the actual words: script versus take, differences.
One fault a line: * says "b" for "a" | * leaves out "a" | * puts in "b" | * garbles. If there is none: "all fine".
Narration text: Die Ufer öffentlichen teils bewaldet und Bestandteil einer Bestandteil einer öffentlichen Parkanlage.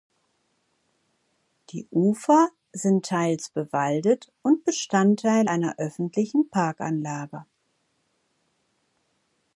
* says "sind" for "öffentlichen"
* leaves out "Bestandteil einer"